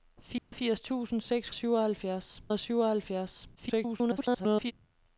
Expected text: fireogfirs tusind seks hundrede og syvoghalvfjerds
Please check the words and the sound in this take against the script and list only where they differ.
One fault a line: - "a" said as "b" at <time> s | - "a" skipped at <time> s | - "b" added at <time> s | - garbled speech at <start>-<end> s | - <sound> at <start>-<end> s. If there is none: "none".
- dropout at 0.4-0.5 s
- "hundrede" said as "syvoghalvfjerds" at 1.5 s
- garbled speech at 3.6-4.7 s